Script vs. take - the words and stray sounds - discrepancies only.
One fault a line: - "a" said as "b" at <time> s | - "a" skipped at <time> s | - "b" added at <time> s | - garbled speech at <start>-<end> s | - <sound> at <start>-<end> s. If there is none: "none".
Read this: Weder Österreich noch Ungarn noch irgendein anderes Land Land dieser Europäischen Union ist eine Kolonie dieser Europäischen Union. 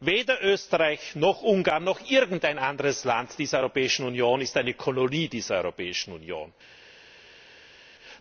- "Land" skipped at 3.4 s